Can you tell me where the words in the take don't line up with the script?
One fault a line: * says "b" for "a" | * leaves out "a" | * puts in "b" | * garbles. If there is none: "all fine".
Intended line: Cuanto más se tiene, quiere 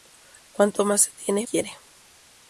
all fine